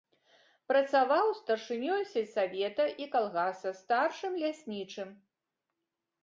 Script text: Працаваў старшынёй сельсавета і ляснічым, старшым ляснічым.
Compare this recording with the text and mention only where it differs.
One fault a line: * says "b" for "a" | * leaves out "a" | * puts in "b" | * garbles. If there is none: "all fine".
* says "калгаса" for "ляснічым"